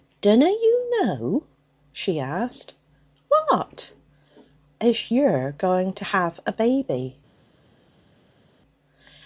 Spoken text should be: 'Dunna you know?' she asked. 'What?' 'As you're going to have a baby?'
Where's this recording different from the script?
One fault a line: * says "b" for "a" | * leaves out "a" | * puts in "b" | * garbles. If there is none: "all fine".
all fine